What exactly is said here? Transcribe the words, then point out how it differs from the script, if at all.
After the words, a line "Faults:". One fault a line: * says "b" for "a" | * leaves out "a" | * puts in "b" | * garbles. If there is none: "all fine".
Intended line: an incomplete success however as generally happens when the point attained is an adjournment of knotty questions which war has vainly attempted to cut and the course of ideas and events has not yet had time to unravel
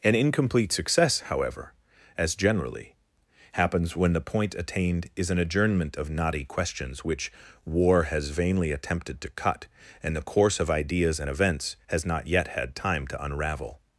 an incomplete success however as generally happens when the point attained is an adjournment of knotty questions which war has vainly attempted to cut and the course of ideas and events has not yet had time to unravel
Faults:
all fine